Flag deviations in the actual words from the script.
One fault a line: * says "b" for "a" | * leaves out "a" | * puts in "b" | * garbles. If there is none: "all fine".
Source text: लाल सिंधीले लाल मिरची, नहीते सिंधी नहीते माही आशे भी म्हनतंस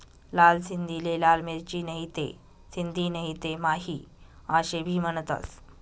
all fine